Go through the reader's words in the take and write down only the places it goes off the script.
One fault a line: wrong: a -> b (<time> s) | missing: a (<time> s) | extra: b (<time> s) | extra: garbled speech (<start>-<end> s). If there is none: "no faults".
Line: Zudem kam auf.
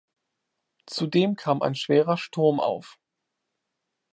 extra: ein schwerer Sturm (1.6 s)